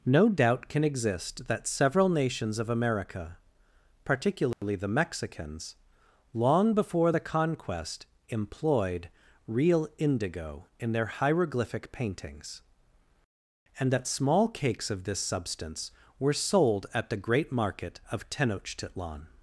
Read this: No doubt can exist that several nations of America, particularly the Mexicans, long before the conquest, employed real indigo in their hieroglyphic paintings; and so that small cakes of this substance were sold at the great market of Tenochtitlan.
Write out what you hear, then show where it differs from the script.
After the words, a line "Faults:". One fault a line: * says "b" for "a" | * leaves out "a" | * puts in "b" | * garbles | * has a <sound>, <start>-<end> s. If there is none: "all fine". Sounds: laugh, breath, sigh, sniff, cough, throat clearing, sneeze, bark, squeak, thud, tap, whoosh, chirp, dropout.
No doubt can exist that several nations of America, particularly the Mexicans, long before the conquest, employed real indigo in their hieroglyphic paintings; and that small cakes of this substance were sold at the great market of Tenochtitlan.
Faults:
* has a dropout, 4.5-4.6 s
* leaves out "so"